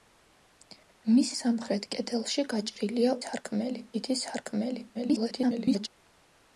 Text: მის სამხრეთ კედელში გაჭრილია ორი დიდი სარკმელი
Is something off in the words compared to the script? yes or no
yes